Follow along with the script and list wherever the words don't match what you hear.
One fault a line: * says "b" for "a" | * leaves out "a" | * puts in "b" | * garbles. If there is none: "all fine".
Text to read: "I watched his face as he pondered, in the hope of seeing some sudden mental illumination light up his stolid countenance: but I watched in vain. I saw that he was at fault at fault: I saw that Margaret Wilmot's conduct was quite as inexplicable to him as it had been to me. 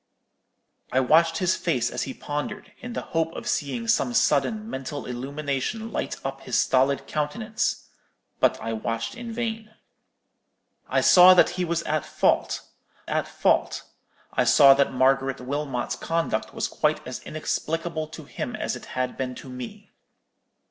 all fine